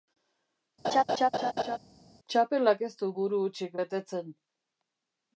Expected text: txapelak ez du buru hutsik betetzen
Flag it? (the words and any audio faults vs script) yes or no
yes